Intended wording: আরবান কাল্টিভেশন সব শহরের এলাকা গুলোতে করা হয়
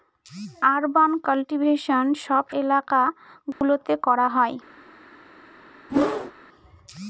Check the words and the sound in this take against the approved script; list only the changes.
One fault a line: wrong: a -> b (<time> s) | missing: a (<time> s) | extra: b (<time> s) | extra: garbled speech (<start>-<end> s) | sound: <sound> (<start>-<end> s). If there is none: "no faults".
missing: শহরের (2.5 s)
sound: dropout (3.5-3.6 s)
sound: whoosh (5.9-6.3 s)